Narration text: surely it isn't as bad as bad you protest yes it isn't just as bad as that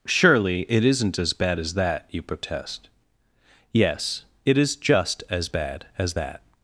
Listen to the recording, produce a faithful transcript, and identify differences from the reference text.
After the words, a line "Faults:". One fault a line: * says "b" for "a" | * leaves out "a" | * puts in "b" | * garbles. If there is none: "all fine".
surely it isn't as bad as that you protest yes it is just as bad as that
Faults:
* says "that" for "bad"
* says "is" for "isn't"